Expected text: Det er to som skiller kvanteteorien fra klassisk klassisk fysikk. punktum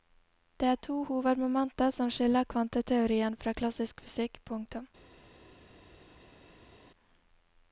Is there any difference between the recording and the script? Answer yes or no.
yes